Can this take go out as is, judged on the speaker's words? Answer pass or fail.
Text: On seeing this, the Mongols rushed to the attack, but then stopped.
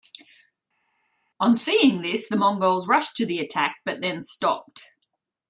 pass